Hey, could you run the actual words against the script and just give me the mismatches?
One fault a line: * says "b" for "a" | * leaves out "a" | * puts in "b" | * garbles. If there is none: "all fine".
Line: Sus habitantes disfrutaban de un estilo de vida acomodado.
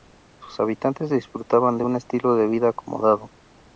all fine